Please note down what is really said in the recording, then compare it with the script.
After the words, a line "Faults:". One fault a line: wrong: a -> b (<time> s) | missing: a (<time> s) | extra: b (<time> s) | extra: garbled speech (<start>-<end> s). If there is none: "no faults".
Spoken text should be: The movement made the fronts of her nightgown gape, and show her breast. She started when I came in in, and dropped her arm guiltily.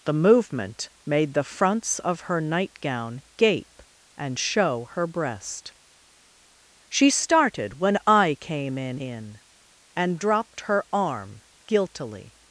The movement made the fronts of her nightgown gape, and show her breast. She started when I came in in, and dropped her arm guiltily.
Faults:
no faults